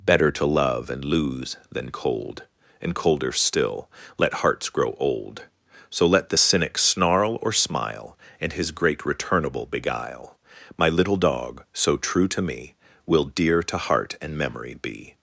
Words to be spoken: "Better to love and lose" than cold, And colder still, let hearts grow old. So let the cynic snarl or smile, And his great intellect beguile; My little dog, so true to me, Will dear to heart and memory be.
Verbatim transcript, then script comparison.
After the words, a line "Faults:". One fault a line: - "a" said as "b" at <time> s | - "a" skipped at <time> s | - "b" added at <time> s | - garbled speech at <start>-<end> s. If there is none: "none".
"Better to love and lose" than cold, And colder still, let hearts grow old. So let the cynic snarl or smile, And his great returnable beguile; My little dog, so true to me, Will dear to heart and memory be.
Faults:
- "intellect" said as "returnable" at 9.0 s